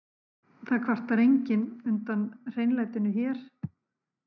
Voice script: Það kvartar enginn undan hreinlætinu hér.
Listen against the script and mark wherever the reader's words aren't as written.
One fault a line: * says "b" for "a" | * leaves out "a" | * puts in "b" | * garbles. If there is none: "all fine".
all fine